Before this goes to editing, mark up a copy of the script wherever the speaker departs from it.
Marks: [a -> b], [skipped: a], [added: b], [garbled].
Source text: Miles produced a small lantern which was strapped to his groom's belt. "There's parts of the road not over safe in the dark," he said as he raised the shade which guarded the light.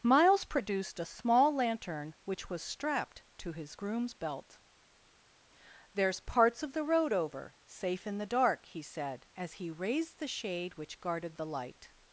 Miles produced a small lantern which was strapped to his groom's belt. "There's parts of the road [skipped: not] over safe in the dark," he said as he raised the shade which guarded the light.